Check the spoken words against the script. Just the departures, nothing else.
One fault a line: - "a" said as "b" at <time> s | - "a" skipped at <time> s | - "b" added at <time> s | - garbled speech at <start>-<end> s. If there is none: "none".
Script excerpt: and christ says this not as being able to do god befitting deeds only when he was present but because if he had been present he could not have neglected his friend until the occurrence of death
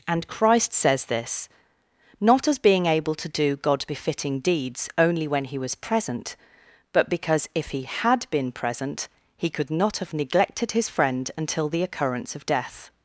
none